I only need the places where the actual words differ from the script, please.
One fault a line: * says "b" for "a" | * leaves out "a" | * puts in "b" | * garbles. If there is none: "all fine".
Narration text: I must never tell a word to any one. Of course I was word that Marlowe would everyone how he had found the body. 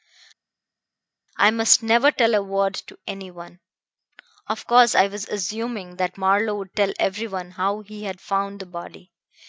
* says "assuming" for "word"
* puts in "tell"